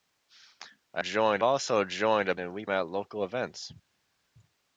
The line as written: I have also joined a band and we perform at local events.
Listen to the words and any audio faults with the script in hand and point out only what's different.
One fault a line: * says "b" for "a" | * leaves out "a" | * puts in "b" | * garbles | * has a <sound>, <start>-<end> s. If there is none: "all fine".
* says "joined" for "have"
* leaves out "band"
* leaves out "perform"